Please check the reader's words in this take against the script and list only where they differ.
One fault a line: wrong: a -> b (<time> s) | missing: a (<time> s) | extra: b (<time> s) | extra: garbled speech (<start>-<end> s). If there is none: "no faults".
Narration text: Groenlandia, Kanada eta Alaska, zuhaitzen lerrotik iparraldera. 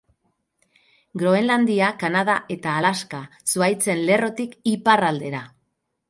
no faults